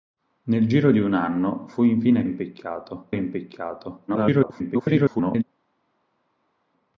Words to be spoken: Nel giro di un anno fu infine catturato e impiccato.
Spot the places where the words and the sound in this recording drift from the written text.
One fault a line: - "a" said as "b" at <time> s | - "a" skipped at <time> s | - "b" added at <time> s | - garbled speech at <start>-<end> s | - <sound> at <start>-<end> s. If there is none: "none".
- "catturato" said as "impiccato" at 2.2 s
- garbled speech at 4.1-5.4 s